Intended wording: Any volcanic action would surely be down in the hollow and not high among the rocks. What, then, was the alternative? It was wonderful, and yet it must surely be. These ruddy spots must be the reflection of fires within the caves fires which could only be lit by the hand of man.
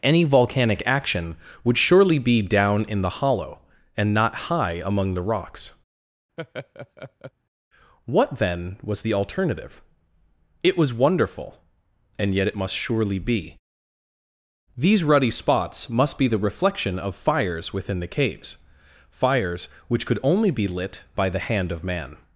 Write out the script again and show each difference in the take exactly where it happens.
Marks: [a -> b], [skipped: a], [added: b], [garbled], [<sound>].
Any volcanic action would surely be down in the hollow and not high among the rocks. [laugh] What, then, was the alternative? It was wonderful, and yet it must surely be. These ruddy spots must be the reflection of fires within the caves fires which could only be lit by the hand of man.